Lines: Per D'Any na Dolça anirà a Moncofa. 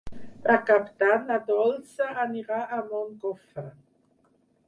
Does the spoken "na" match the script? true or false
true